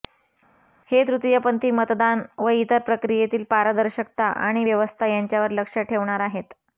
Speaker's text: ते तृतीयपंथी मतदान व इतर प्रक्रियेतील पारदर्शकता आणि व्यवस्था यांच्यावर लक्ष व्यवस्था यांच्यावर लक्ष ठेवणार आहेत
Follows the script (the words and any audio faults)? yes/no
no